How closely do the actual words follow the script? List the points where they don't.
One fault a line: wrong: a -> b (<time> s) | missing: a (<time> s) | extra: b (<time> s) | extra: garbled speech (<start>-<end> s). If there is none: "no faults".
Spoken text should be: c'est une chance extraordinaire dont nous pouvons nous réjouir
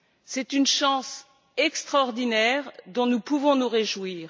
no faults